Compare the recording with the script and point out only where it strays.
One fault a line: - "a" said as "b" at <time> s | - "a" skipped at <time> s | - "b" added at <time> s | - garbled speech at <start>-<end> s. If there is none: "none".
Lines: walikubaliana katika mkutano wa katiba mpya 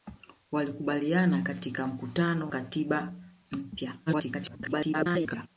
- "wa" skipped at 2.5 s
- garbled speech at 4.1-5.5 s